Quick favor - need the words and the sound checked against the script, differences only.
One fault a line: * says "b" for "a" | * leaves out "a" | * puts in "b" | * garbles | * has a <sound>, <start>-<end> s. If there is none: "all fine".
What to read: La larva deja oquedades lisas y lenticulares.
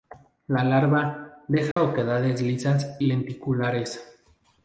* has a dropout, 1.7-1.8 s
* leaves out "y"